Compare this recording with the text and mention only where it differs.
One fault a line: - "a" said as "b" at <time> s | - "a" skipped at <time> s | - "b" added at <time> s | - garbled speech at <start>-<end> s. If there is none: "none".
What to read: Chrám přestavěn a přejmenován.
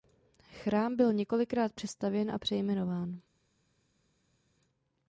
- "byl několikrát" added at 0.9 s